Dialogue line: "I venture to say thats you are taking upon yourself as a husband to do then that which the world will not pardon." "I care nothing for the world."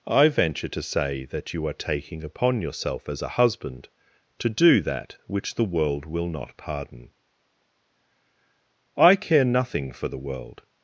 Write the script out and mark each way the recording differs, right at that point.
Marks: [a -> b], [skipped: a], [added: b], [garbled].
"I venture to say [thats -> that] you are taking upon yourself as a husband to do [skipped: then] that which the world will not pardon." "I care nothing for the world."